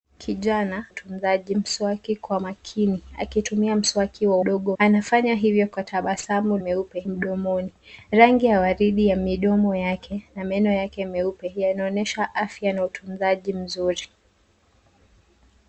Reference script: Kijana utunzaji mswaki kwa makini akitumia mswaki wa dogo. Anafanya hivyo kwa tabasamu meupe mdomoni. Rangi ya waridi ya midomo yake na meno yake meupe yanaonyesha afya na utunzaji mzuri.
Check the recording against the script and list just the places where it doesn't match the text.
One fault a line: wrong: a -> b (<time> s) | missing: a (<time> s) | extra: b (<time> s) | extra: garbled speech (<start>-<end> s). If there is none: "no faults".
no faults